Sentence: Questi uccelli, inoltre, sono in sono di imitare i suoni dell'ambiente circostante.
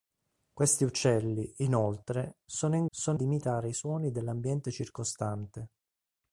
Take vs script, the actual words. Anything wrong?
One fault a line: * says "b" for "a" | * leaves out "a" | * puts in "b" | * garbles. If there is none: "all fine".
all fine